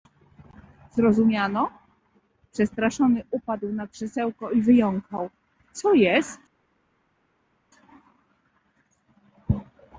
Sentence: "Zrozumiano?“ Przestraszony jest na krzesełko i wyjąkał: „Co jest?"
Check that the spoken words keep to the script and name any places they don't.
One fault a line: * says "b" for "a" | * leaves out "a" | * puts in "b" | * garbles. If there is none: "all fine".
* says "upadł" for "jest"